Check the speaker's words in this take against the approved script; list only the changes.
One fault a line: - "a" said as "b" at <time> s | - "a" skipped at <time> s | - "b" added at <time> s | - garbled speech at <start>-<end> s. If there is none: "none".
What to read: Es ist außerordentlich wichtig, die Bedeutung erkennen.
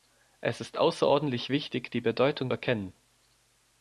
none